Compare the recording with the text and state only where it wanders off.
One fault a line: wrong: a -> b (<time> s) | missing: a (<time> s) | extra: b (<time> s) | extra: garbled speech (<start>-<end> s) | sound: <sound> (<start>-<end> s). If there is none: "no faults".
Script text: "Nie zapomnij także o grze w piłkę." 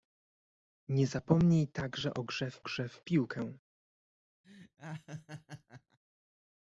extra: grze w (2.6 s)
sound: laugh (4.4-6.0 s)